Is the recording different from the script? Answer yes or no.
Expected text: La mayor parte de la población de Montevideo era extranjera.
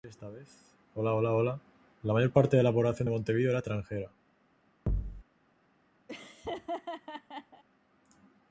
no